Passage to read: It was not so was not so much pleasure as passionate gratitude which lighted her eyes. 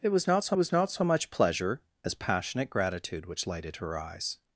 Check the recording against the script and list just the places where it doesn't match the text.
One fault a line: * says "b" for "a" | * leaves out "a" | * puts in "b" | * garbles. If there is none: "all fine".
all fine